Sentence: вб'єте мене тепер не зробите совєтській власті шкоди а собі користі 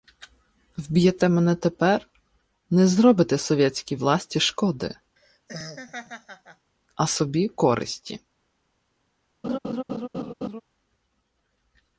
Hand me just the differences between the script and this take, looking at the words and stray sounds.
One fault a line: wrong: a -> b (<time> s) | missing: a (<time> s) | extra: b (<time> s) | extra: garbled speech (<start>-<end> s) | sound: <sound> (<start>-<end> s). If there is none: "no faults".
sound: laugh (5.2-6.7 s)
sound: laugh (9.4-10.6 s)